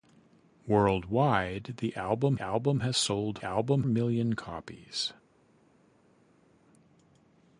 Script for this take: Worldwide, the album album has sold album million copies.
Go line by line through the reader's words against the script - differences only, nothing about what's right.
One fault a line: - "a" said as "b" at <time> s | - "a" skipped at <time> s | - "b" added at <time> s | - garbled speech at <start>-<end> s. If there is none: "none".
none